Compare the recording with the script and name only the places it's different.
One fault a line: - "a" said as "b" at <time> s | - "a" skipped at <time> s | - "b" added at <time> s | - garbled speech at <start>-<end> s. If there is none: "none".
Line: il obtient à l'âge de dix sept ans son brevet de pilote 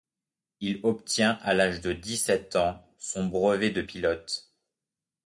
none